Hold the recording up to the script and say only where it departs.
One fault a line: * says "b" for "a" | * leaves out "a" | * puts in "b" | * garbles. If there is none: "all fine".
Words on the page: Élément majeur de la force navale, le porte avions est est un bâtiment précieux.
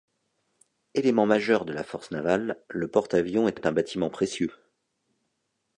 all fine